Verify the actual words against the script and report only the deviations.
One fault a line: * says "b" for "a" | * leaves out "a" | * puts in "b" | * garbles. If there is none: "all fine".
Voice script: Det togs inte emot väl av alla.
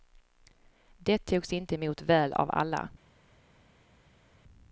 all fine